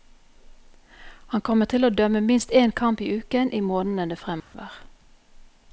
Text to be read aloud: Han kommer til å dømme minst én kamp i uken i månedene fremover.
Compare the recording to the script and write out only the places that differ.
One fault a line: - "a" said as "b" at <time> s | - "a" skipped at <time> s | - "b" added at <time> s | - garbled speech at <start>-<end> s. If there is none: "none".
none